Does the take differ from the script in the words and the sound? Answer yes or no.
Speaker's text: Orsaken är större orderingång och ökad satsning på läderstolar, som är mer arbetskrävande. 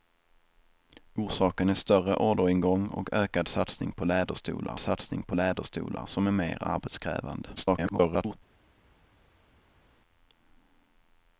yes